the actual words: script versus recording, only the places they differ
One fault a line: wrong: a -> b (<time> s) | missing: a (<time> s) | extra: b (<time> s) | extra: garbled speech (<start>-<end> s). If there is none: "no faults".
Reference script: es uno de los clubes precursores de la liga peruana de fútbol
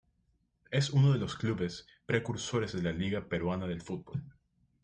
no faults